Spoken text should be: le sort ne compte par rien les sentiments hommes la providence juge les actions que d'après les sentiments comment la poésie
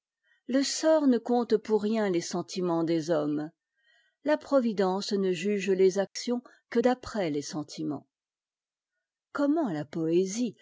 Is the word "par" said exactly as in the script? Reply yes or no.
no